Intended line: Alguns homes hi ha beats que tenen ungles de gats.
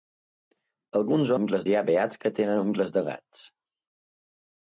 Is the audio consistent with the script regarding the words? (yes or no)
no